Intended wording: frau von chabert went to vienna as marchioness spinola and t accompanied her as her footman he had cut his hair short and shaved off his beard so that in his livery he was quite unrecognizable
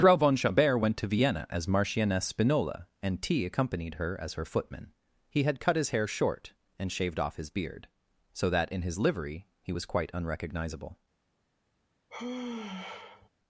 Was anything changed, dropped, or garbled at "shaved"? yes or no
no